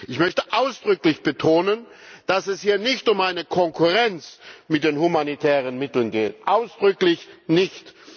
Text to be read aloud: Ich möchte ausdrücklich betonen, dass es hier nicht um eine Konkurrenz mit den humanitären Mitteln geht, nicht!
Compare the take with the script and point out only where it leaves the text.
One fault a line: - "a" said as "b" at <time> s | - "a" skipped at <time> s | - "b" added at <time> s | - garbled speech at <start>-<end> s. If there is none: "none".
- "ausdrücklich" added at 6.5 s